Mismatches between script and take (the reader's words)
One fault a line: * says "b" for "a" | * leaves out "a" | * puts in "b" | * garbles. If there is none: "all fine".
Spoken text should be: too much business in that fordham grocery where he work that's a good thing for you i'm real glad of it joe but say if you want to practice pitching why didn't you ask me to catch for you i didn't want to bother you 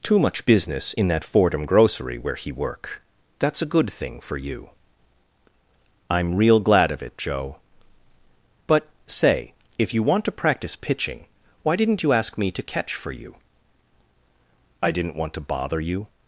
all fine